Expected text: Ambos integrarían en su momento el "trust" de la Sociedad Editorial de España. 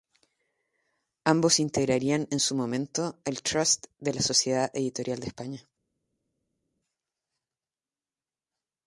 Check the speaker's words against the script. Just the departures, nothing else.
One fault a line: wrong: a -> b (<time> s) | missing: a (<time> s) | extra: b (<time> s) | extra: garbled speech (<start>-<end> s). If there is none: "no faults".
no faults